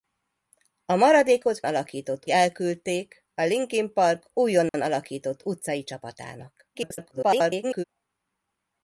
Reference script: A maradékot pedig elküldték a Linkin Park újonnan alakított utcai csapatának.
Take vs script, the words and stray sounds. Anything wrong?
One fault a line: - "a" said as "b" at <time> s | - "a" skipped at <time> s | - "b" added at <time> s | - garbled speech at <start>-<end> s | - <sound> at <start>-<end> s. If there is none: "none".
- "pedig" said as "alakított" at 1.6 s
- dropout at 4.7-4.7 s
- garbled speech at 6.7-7.8 s